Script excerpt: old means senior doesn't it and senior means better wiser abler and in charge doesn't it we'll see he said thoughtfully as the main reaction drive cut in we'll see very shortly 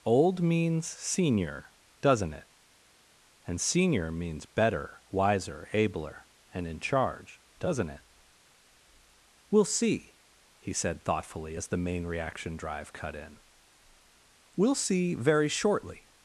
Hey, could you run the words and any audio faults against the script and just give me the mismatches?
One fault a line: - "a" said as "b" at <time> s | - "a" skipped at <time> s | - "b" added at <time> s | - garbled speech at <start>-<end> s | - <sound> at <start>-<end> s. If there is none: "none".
none